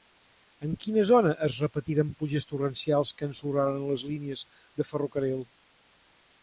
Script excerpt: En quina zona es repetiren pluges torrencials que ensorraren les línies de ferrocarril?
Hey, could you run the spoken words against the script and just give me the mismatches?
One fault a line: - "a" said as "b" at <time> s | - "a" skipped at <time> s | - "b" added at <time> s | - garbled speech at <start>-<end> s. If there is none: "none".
none